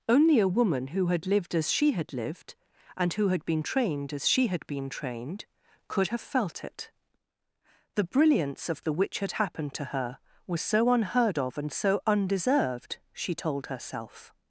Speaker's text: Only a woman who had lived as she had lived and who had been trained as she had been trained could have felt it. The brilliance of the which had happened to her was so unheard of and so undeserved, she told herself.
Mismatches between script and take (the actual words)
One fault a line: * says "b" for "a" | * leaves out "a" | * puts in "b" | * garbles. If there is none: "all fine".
all fine